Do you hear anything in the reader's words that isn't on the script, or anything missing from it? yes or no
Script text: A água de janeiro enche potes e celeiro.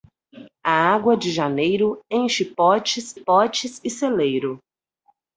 yes